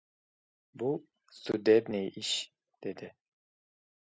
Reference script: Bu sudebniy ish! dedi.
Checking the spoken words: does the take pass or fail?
pass